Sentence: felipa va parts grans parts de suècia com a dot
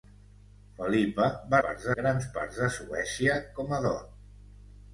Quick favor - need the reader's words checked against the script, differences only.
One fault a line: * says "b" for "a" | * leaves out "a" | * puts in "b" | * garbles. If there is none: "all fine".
all fine